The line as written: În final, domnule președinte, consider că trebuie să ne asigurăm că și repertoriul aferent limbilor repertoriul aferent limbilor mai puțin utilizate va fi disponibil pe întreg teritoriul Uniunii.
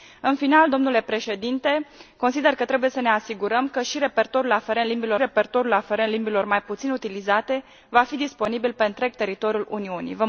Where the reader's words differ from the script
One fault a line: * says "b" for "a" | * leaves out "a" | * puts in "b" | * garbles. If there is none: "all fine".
all fine